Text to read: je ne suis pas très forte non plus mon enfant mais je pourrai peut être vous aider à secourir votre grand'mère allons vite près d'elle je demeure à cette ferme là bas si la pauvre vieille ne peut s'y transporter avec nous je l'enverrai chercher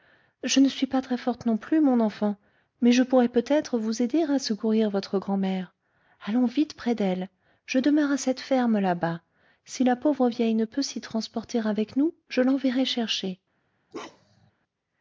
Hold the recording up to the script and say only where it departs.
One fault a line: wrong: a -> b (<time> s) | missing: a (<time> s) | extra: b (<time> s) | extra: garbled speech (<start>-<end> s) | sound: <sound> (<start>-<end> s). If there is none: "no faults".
sound: bark (13.9-14.5 s)